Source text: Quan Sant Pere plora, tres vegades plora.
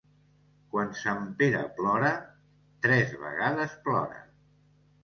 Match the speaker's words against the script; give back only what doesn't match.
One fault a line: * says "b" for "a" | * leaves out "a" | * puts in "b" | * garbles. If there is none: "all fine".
all fine